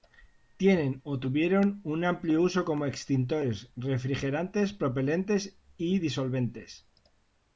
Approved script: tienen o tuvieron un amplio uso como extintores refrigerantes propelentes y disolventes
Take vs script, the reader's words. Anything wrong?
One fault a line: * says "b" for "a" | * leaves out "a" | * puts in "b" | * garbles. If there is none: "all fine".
all fine